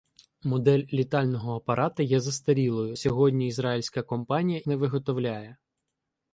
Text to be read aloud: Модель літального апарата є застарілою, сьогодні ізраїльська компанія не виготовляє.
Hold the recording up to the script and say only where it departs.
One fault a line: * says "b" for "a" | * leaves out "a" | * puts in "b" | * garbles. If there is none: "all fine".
all fine